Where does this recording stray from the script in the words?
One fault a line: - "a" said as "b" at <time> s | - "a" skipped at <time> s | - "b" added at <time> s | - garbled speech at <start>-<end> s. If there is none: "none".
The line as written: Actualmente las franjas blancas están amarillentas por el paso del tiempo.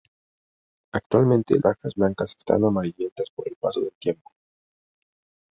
- "las" skipped at 1.6 s